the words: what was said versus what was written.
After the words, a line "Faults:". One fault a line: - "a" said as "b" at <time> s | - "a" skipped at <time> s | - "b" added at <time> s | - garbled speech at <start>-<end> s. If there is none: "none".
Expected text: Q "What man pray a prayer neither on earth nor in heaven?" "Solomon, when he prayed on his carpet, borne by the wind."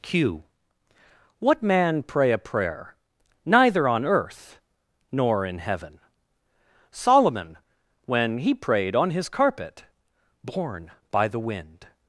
Q "What man pray a prayer neither on earth nor in heaven?" "Solomon, when he prayed on his carpet, borne by the wind."
Faults:
none